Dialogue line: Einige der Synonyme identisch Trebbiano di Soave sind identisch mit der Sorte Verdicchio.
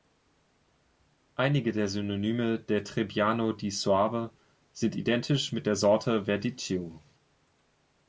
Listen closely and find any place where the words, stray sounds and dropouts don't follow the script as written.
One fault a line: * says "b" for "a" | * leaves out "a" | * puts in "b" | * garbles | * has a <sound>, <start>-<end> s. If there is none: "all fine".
* says "der" for "identisch"